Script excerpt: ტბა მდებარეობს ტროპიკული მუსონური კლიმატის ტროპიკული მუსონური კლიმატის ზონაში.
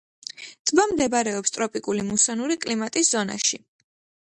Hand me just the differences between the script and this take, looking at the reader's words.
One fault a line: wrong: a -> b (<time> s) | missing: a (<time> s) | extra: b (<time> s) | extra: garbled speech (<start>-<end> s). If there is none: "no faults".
missing: ტროპიკული მუსონური კლიმატის (3.1 s)